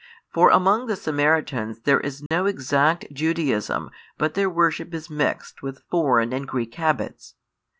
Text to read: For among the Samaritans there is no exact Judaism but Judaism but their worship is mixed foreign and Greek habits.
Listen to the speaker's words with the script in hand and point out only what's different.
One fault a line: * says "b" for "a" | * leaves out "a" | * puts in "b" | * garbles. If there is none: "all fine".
* leaves out "Judaism but"
* puts in "with"